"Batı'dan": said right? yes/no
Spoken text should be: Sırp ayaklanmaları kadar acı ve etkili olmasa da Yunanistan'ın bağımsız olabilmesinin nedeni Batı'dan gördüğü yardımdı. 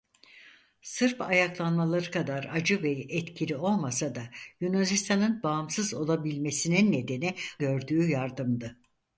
no